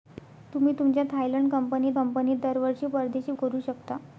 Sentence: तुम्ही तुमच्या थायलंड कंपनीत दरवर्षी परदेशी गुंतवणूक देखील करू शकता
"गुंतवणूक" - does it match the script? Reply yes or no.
no